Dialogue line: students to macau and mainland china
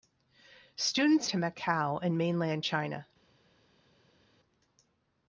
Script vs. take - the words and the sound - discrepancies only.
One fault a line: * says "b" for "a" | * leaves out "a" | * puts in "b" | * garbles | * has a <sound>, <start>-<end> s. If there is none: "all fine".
all fine